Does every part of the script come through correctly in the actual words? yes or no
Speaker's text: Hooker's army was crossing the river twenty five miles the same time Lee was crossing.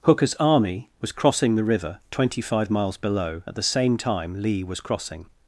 no